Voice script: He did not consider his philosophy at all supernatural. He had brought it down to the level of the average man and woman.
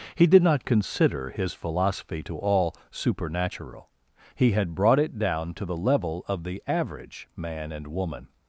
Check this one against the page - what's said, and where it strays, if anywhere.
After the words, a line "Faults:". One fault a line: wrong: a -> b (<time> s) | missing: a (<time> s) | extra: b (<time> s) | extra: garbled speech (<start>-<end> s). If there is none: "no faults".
He did not consider his philosophy to all supernatural. He had brought it down to the level of the average man and woman.
Faults:
wrong: at -> to (2.2 s)